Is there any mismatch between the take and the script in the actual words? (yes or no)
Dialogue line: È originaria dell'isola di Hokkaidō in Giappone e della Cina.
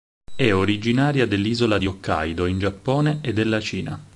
no